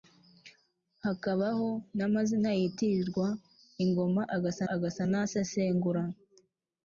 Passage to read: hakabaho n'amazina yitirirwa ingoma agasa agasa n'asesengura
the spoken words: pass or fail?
pass